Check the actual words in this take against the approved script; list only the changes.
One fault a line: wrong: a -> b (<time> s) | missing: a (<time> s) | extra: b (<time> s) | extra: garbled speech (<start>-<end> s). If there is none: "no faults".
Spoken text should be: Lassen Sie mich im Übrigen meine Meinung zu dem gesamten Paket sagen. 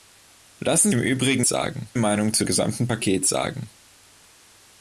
missing: Sie mich (0.9 s)
wrong: meine -> sagen (1.5 s)
missing: dem (2.4 s)